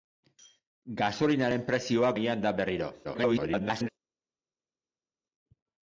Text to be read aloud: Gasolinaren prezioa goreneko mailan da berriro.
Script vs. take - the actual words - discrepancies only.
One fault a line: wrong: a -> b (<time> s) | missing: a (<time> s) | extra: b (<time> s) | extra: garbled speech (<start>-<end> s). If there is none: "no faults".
missing: goreneko (2.1 s)
extra: garbled speech (3.0-3.9 s)